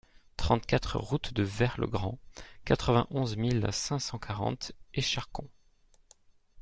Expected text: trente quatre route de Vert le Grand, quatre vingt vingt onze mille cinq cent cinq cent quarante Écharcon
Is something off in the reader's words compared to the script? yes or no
yes